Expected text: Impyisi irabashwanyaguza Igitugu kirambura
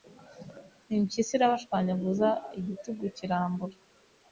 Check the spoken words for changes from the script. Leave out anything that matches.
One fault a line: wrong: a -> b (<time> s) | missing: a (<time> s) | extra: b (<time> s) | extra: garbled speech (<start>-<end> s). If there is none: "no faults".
no faults